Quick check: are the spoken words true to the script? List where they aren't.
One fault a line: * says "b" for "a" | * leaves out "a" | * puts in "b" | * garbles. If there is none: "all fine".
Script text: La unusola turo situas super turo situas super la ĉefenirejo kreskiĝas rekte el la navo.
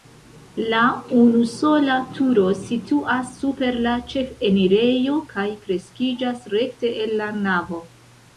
* leaves out "turo situas super"
* puts in "kaj"